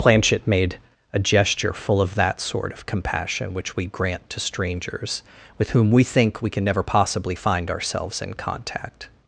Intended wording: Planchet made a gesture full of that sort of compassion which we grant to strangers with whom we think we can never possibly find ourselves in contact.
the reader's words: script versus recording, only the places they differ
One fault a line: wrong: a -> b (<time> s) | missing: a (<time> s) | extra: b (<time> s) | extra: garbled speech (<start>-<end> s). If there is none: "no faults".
no faults